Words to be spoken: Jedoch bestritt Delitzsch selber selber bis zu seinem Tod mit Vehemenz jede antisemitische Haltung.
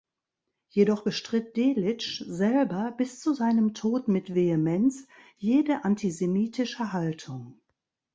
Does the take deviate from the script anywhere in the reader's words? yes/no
yes